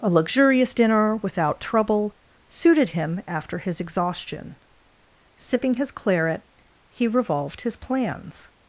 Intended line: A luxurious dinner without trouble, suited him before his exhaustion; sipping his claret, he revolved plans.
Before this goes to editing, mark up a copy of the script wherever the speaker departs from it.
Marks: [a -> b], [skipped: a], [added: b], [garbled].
A luxurious dinner without trouble, suited him [before -> after] his exhaustion; sipping his claret, he revolved [added: his] plans.